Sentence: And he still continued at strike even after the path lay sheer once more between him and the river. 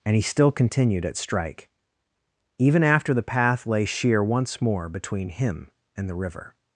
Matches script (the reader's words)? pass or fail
pass